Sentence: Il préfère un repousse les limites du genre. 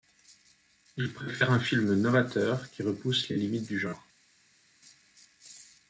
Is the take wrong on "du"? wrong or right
right